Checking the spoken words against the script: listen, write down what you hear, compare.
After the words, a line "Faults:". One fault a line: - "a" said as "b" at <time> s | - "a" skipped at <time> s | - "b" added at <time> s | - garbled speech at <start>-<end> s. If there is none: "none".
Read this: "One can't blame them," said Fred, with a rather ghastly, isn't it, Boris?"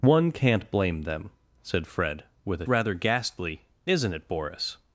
"One can't blame them," said Fred, with a rather ghastly, isn't it, Boris?"
Faults:
none